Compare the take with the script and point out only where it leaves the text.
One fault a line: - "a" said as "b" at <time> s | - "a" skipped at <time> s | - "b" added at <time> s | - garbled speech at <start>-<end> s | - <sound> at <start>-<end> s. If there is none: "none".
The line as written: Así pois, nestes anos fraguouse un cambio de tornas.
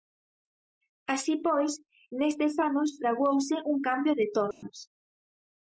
- dropout at 4.5-4.6 s